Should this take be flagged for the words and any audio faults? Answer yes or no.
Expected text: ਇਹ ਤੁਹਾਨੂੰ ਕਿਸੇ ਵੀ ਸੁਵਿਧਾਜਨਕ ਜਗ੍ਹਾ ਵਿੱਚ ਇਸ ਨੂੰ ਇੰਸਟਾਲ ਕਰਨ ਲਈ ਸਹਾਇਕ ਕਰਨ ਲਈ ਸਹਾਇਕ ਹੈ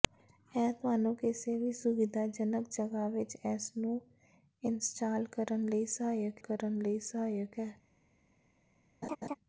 yes